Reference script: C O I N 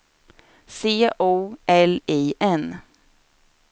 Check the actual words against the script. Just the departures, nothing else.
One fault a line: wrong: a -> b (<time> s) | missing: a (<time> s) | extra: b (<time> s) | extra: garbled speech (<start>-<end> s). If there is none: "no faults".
extra: L (1.7 s)